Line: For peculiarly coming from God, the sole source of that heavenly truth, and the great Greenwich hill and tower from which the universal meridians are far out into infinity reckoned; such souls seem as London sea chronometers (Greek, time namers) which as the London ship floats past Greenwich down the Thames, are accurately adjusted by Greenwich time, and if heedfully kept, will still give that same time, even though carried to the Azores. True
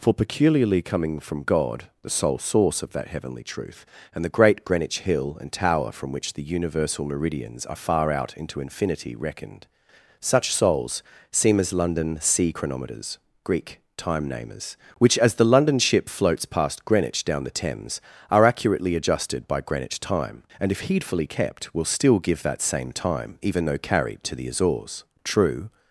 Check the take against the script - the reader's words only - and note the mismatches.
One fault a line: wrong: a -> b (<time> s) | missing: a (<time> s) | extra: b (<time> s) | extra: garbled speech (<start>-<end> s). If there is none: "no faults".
no faults